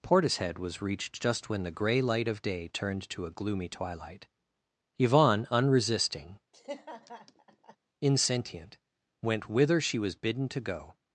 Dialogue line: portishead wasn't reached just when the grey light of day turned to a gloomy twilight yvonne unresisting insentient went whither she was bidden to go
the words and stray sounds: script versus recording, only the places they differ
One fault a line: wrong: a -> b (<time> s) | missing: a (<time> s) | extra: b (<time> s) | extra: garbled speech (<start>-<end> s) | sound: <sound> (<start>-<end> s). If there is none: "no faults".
wrong: wasn't -> was (0.6 s)
sound: laugh (6.5-7.8 s)